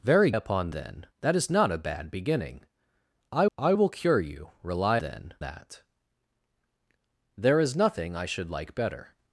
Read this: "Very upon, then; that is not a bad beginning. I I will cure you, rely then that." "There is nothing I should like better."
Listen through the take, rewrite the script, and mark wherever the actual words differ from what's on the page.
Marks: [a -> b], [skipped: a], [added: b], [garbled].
"Very upon, then; that is not a bad beginning. I I will cure you, rely then that." "There is nothing I should like better."